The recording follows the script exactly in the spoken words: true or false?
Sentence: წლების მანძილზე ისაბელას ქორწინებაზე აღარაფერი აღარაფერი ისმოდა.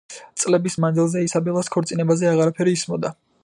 false